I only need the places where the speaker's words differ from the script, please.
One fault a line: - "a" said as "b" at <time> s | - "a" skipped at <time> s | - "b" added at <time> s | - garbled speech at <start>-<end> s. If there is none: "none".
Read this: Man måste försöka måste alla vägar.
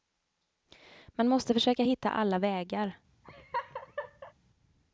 - "måste" said as "hitta" at 1.8 s